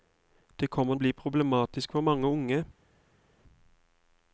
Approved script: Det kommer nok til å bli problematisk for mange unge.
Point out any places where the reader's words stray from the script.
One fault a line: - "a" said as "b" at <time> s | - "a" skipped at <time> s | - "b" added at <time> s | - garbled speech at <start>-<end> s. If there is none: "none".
- "nok til" skipped at 0.9 s